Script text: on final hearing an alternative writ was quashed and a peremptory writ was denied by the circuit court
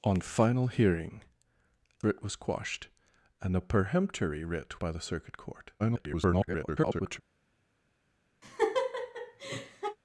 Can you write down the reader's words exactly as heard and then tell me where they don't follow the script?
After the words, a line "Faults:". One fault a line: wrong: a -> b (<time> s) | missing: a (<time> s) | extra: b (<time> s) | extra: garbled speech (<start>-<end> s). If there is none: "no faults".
on final hearing writ was quashed and a peremptory writ by the circuit court [garbled]
Faults:
missing: an alternative (1.2 s)
missing: was denied (4.8 s)
extra: garbled speech (5.8-7.2 s)